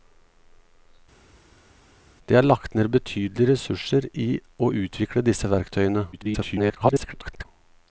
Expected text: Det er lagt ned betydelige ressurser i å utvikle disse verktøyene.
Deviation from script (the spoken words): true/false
true